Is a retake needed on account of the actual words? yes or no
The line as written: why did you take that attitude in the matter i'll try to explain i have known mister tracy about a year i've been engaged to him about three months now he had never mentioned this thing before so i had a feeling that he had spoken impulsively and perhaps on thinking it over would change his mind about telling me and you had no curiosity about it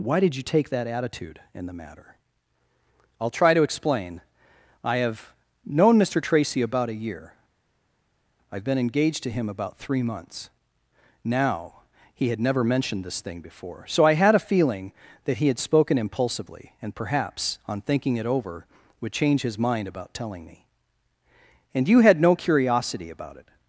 no